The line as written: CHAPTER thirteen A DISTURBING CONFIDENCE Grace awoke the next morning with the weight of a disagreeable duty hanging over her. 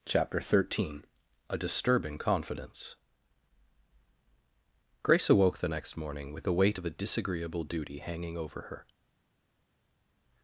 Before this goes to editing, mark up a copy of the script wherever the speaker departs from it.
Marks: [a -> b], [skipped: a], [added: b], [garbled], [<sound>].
CHAPTER thirteen A DISTURBING CONFIDENCE Grace awoke the next morning with the weight of a disagreeable duty hanging over her.